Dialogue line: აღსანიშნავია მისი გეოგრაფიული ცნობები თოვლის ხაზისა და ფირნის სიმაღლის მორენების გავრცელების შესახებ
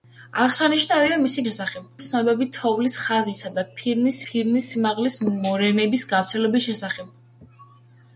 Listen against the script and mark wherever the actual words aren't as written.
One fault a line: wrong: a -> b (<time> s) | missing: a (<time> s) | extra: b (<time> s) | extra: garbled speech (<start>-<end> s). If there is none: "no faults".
wrong: გეოგრაფიული -> შესახებ (1.5 s)
extra: ფირნის (4.3 s)